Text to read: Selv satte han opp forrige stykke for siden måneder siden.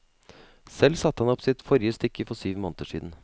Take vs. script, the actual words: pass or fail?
fail